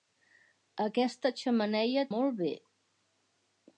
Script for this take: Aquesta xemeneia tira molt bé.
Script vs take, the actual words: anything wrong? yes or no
yes